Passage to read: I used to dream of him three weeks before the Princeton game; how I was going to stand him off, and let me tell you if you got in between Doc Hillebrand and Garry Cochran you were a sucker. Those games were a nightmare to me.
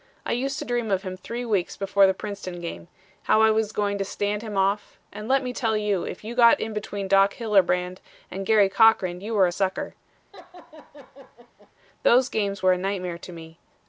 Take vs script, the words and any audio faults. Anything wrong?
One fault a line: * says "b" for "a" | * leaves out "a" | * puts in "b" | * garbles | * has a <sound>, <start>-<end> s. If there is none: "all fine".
* has a laugh, 10.3-11.7 s